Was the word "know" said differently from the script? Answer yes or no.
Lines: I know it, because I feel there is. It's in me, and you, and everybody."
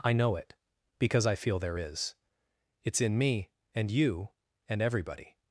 no